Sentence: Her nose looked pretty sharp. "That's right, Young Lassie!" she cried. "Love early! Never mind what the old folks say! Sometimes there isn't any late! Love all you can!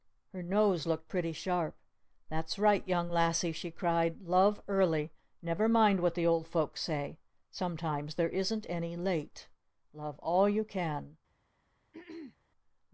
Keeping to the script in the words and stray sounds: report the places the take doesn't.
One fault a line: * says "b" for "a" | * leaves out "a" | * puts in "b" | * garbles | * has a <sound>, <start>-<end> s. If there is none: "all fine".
* has a throat clearing, 11.9-12.4 s